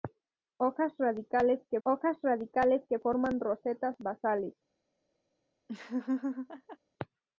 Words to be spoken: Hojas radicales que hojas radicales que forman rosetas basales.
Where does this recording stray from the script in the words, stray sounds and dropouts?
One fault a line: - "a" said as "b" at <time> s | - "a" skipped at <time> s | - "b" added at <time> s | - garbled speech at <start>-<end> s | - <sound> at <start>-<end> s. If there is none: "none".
- laugh at 5.7-6.8 s